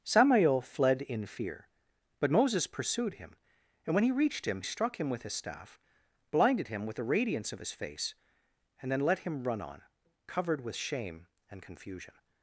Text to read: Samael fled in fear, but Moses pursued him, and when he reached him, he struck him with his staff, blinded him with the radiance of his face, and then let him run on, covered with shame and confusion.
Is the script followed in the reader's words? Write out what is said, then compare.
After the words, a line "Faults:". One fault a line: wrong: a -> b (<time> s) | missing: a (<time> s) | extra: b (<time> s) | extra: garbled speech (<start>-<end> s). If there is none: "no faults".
Samael fled in fear, but Moses pursued him, and when he reached him, struck him with his staff, blinded him with the radiance of his face, and then let him run on, covered with shame and confusion.
Faults:
missing: he (4.6 s)